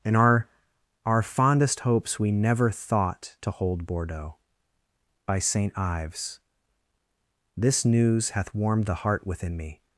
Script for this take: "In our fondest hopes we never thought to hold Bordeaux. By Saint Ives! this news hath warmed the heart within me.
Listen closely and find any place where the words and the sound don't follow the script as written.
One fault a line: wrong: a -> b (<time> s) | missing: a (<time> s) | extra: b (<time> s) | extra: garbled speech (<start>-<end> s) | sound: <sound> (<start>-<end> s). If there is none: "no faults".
extra: our (1.1 s)